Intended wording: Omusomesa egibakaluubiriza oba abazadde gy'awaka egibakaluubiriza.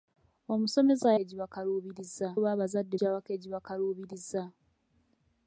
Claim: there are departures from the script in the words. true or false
false